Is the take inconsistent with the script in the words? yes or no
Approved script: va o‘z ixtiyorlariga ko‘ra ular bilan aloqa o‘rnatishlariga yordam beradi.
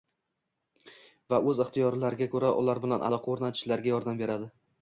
no